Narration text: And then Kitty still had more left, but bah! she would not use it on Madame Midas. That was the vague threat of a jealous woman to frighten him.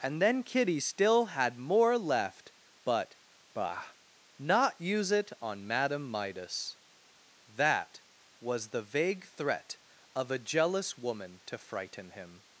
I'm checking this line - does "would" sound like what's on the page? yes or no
no